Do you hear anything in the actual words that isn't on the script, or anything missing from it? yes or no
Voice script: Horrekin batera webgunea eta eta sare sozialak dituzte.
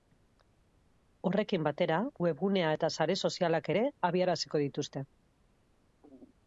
yes